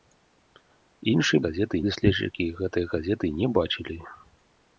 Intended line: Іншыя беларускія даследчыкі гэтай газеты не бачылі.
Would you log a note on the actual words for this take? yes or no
yes